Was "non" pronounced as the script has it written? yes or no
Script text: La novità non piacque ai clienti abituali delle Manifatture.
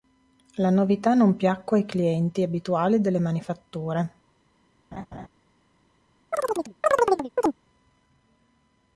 yes